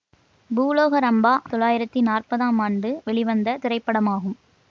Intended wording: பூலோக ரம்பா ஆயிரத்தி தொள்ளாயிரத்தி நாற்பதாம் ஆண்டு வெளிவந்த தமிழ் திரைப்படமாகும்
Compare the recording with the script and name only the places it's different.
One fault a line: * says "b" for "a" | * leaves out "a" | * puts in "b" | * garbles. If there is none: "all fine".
* leaves out "ஆயிரத்தி"
* leaves out "தமிழ்"